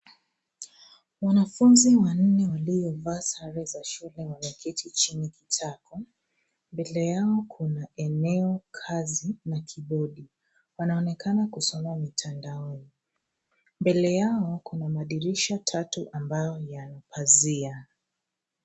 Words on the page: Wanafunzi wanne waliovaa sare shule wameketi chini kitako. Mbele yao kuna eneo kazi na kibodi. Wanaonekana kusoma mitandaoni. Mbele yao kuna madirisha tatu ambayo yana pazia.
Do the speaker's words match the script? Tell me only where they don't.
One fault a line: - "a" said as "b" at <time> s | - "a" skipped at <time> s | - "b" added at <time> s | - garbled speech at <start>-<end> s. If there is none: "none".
- "za" added at 3.6 s